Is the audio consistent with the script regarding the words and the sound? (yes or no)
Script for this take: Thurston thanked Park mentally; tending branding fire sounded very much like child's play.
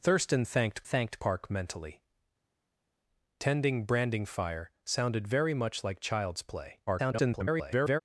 no